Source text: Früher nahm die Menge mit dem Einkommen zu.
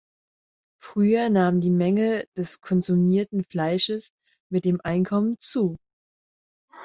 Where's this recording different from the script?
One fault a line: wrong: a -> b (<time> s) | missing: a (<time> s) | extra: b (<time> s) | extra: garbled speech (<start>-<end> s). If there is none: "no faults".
extra: des konsumierten Fleisches (2.4 s)